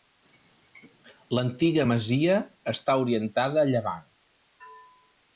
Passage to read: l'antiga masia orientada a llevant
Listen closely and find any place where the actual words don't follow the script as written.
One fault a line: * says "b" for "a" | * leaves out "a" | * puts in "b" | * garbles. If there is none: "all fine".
* puts in "està"